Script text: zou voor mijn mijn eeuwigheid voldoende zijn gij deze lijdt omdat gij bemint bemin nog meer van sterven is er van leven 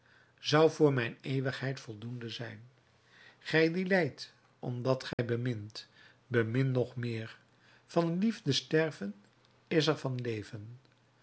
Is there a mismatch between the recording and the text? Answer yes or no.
yes